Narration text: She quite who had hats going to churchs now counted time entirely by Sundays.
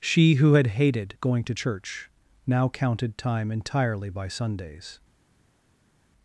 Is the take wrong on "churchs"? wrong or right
wrong